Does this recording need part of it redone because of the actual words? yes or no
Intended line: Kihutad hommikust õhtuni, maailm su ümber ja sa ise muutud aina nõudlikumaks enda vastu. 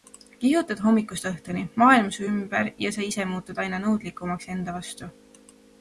no